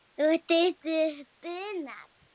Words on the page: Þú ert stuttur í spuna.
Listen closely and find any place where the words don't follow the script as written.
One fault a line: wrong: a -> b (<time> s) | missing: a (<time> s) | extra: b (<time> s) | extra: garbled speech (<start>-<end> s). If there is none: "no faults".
no faults